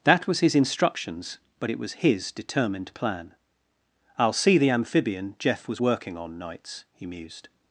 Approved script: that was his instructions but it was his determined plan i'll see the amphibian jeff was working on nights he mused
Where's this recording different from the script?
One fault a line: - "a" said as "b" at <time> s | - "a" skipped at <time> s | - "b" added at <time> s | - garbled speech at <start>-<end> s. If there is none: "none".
none